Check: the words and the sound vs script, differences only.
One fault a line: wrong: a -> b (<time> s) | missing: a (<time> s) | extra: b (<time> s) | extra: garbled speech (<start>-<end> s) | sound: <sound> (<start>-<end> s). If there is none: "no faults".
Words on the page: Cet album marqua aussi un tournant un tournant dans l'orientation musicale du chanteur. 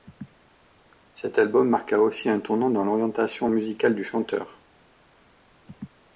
missing: un tournant (2.7 s)